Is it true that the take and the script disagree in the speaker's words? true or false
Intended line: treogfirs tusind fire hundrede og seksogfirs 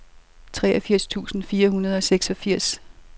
false